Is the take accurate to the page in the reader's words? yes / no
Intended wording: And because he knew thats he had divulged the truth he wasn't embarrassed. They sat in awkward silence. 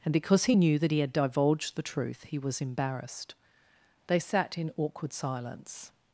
no